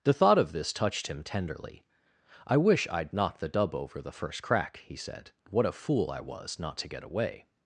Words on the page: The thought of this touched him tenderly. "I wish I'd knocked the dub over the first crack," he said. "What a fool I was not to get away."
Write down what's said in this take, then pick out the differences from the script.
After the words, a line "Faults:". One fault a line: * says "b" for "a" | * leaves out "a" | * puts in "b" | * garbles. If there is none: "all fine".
The thought of this touched him tenderly. "I wish I'd knocked the dub over the first crack," he said. "What a fool I was not to get away."
Faults:
all fine